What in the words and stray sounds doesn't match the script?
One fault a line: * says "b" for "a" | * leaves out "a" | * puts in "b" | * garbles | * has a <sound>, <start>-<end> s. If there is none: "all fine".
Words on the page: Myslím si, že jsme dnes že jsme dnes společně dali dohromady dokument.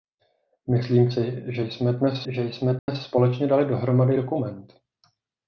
* has a dropout, 2.8-2.9 s